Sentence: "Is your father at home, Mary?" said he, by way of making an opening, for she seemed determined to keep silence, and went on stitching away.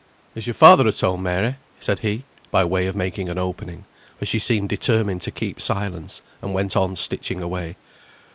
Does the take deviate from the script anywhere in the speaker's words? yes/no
no